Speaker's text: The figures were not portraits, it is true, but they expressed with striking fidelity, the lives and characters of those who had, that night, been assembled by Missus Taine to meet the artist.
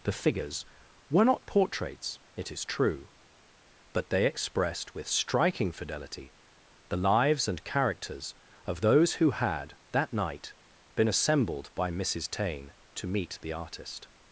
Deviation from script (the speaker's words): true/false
false